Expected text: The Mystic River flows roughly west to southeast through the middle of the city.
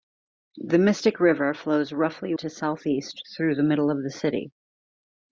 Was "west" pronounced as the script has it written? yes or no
no